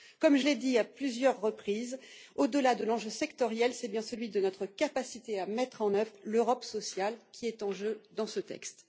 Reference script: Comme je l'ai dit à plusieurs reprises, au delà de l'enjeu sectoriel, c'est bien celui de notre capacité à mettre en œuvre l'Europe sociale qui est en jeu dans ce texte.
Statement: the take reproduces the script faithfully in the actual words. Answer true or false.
true